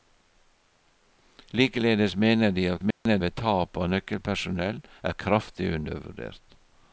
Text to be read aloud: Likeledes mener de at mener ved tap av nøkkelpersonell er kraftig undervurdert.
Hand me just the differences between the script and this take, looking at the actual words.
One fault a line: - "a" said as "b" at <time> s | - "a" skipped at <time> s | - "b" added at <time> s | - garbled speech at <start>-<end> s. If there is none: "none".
none